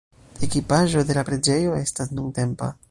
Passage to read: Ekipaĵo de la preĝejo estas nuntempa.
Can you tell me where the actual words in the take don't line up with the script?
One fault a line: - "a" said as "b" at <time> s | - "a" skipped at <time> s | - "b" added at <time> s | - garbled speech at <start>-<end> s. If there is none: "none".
none